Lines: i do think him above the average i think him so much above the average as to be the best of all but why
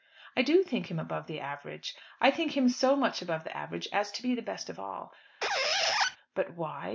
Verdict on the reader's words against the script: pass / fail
pass